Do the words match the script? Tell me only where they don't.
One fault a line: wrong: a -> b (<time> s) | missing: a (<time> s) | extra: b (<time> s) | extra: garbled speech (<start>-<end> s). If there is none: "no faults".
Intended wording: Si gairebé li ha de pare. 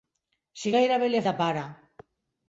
no faults